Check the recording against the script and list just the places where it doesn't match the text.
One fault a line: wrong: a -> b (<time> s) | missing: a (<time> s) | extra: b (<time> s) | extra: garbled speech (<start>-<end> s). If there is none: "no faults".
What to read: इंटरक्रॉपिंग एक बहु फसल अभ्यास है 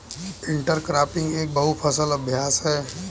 no faults